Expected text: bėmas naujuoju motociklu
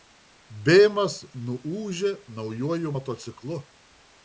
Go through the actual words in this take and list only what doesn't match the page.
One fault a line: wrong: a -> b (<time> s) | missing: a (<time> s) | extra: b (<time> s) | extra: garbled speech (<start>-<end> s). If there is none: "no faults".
extra: nuūžė (1.5 s)